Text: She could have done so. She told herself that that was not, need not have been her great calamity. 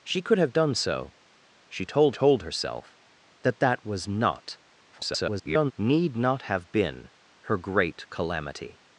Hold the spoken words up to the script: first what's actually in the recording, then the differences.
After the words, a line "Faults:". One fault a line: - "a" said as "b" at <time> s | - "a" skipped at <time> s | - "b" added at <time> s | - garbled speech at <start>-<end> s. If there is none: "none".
She could have done so. She told told herself that that was not, [garbled] need not have been her great calamity.
Faults:
- "told" added at 2.1 s
- garbled speech at 4.9-5.7 s